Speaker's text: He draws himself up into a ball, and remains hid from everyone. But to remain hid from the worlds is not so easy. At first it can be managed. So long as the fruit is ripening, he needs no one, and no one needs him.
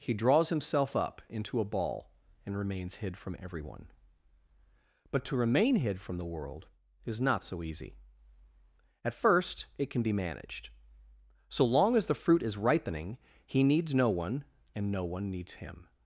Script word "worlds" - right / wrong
wrong